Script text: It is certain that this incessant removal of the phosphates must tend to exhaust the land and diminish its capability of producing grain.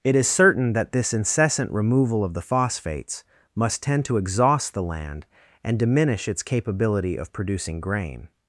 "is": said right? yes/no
yes